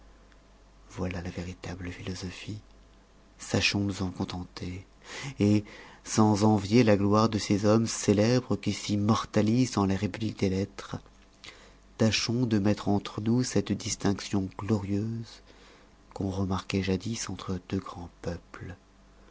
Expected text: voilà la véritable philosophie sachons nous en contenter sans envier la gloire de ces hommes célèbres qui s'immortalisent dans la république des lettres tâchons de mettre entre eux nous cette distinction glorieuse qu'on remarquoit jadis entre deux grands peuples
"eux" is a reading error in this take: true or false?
true